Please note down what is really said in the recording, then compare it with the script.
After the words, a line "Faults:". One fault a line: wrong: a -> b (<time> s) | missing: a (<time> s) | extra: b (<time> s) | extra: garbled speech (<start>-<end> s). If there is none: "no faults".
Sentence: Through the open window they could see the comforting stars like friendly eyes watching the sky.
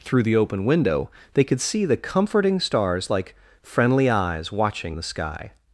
Through the open window they could see the comforting stars like friendly eyes watching the sky.
Faults:
no faults